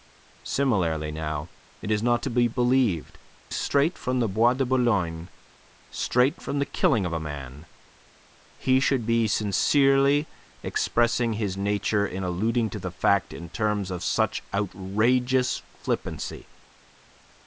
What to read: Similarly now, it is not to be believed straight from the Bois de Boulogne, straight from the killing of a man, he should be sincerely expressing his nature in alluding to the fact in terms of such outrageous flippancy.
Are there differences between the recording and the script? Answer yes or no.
no